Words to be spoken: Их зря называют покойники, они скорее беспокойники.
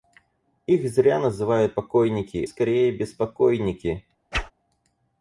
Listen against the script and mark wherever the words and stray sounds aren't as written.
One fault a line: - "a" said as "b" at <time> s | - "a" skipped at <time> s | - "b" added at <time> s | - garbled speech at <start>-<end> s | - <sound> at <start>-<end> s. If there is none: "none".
- "они" skipped at 2.4 s
- whoosh at 4.3-4.5 s